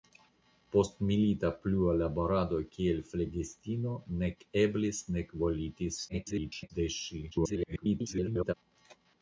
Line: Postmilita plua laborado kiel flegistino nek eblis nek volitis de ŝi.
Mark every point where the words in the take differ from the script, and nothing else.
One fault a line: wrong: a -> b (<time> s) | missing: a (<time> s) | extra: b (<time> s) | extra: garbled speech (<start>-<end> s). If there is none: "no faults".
extra: garbled speech (6.1-6.7 s)
extra: garbled speech (7.3-8.5 s)